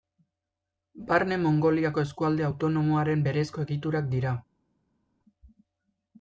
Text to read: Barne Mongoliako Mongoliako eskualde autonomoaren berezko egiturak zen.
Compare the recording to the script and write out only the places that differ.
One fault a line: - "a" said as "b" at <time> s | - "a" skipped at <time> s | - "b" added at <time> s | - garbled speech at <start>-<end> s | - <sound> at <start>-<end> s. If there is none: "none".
- "Mongoliako" skipped at 2.0 s
- "zen" said as "dira" at 4.2 s